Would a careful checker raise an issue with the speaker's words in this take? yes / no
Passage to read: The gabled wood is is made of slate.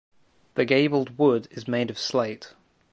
yes